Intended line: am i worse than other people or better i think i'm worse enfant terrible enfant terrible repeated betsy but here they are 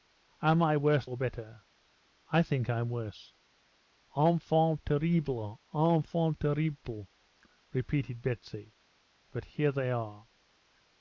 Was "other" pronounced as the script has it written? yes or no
no